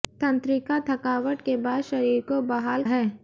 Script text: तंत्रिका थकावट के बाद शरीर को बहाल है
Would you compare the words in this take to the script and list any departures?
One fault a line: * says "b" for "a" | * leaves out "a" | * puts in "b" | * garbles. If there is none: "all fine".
all fine